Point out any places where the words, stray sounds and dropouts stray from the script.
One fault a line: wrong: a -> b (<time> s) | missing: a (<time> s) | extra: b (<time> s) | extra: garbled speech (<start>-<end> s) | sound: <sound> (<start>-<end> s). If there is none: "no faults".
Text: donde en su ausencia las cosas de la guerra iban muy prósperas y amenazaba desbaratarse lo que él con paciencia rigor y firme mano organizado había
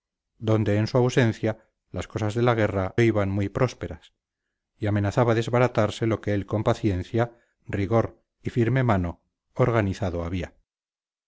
no faults